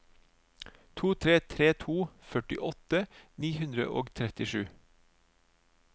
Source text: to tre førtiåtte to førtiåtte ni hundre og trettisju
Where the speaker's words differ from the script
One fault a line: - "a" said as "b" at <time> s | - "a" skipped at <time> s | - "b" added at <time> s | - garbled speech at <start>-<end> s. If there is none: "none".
- "førtiåtte" said as "tre" at 1.5 s